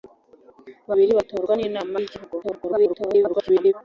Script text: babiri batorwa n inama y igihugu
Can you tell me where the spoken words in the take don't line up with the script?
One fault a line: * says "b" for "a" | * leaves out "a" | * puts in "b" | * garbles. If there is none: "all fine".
* garbles